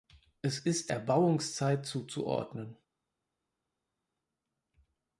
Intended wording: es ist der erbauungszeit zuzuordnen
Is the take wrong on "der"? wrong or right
wrong